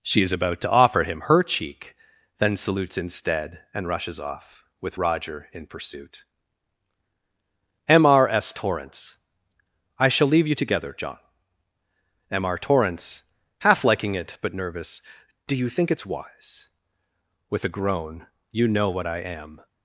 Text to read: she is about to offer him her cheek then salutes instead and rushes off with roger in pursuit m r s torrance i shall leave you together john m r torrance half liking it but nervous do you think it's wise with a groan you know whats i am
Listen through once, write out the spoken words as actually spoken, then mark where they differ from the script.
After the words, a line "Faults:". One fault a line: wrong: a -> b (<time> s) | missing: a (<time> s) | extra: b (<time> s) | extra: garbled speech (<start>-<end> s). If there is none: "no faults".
she is about to offer him her cheek then salutes instead and rushes off with roger in pursuit m r s torrance i shall leave you together john m r torrance half liking it but nervous do you think it's wise with a groan you know what i am
Faults:
wrong: whats -> what (18.9 s)